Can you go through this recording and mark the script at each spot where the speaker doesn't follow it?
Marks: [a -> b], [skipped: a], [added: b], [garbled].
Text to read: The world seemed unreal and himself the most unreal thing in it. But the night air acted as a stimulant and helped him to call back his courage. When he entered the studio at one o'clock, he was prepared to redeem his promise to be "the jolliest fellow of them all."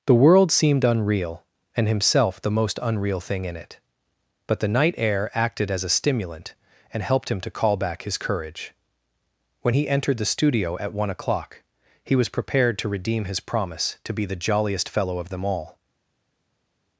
The world seemed unreal and himself the most unreal thing in it. But the night air acted as a stimulant and helped him to call back his courage. When he entered the studio at one o'clock, he was prepared to redeem his promise to be "the jolliest fellow of them all."